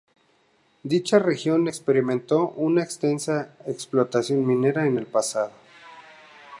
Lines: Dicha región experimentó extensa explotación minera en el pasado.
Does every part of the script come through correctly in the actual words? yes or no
no